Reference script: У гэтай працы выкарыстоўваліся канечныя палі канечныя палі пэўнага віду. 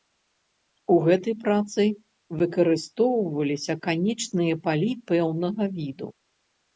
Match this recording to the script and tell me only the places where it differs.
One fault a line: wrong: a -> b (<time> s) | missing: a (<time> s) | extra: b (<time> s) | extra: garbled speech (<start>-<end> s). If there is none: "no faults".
missing: канечныя палі (4.9 s)